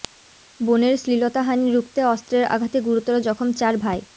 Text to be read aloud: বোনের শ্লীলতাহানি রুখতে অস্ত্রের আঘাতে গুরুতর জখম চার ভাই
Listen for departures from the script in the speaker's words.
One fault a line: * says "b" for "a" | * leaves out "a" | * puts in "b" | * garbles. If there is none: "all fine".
all fine